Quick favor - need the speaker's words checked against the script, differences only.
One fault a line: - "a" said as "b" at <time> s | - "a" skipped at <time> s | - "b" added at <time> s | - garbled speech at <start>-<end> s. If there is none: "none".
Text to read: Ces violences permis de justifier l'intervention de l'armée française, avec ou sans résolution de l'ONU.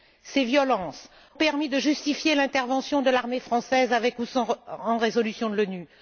none